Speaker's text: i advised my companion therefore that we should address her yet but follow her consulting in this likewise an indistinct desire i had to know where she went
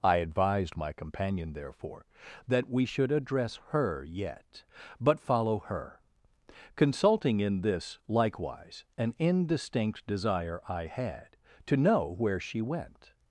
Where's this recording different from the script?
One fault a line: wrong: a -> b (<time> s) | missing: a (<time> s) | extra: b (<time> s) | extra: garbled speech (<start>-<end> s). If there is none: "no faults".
no faults